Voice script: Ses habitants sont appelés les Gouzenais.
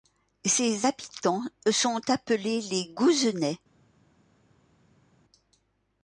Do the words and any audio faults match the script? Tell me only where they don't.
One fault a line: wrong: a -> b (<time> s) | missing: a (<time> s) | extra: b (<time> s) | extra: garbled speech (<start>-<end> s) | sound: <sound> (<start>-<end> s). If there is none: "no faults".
no faults